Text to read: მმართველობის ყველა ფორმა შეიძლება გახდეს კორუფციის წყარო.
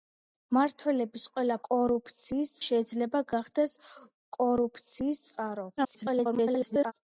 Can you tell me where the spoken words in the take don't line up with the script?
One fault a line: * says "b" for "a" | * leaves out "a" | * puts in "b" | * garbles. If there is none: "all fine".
* says "კორუფციის" for "ფორმა"
* garbles